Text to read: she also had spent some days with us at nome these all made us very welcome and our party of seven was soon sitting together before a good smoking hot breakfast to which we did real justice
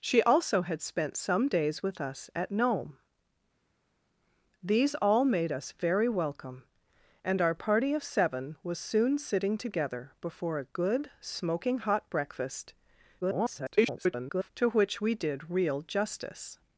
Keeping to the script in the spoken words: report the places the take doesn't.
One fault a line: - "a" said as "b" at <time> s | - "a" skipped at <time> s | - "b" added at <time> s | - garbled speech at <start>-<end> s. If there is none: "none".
- garbled speech at 13.2-14.5 s